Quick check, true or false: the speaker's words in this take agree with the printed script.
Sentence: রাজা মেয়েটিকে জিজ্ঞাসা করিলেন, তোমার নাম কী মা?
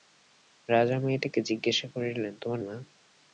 false